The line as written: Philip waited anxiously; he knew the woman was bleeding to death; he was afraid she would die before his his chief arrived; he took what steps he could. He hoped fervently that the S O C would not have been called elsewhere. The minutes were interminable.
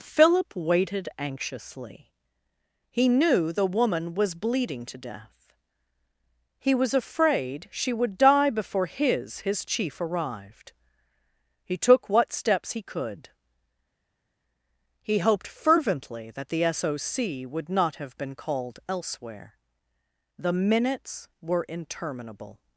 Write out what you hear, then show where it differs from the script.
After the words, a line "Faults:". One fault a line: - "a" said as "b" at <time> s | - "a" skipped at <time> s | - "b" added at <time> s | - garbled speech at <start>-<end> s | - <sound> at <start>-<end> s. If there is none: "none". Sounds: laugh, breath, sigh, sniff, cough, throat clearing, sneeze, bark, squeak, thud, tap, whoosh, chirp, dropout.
Philip waited anxiously; he knew the woman was bleeding to death; he was afraid she would die before his his chief arrived; he took what steps he could. He hoped fervently that the S O C would not have been called elsewhere. The minutes were interminable.
Faults:
none